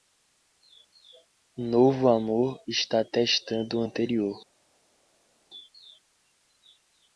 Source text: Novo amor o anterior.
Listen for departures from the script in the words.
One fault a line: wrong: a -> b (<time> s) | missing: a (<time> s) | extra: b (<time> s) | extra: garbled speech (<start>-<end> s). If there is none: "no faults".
extra: está testando (2.7 s)